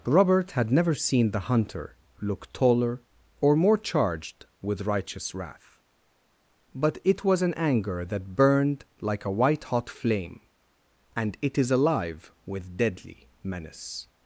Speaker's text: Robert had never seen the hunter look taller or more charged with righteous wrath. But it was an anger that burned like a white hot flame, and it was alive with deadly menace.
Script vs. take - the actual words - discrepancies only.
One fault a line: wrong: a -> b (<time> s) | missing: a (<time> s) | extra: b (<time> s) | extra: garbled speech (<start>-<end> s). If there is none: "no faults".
wrong: was -> is (11.6 s)